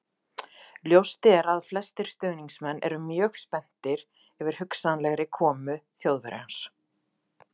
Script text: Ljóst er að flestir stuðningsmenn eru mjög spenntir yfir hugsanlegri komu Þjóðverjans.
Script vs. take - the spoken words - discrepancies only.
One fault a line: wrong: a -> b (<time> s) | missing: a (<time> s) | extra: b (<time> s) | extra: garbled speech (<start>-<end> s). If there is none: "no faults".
no faults